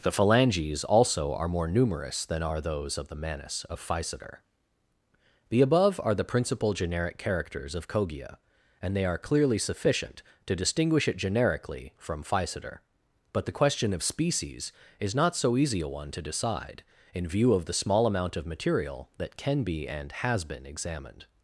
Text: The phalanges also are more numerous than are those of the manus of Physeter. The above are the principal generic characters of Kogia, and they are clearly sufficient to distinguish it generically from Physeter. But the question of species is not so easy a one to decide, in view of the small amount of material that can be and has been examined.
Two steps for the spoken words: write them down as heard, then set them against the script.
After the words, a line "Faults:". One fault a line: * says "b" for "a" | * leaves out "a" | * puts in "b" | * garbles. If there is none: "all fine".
The phalanges also are more numerous than are those of the manus of Physeter. The above are the principal generic characters of Kogia, and they are clearly sufficient to distinguish it generically from Physeter. But the question of species is not so easy a one to decide, in view of the small amount of material that can be and has been examined.
Faults:
all fine